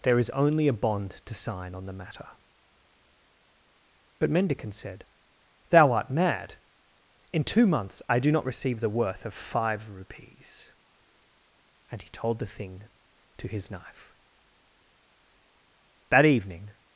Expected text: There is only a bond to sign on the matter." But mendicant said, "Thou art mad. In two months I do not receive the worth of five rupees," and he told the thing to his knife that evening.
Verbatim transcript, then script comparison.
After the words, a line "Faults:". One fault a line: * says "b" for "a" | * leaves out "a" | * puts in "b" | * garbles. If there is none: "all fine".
There is only a bond to sign on the matter." But mendicant said, "Thou art mad. In two months I do not receive the worth of five rupees," and he told the thing to his knife that evening.
Faults:
all fine